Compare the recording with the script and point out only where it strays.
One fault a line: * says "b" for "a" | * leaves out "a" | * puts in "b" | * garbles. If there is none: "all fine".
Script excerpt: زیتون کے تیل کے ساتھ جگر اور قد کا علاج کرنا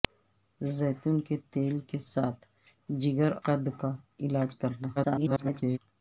* leaves out "اور"
* garbles